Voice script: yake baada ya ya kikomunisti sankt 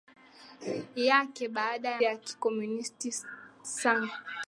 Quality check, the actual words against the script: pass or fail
pass